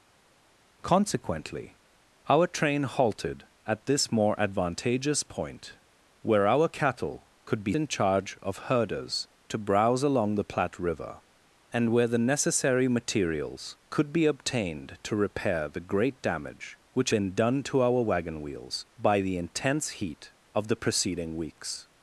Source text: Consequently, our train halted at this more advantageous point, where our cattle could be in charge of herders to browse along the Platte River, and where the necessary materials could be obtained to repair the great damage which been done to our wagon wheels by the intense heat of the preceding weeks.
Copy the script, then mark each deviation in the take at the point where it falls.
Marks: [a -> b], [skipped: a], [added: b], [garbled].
Consequently, our train halted at this more advantageous point, where our cattle could be in charge of herders to browse along the Platte River, and where the necessary materials could be obtained to repair the great damage which been done to our wagon wheels by the intense heat of the preceding weeks.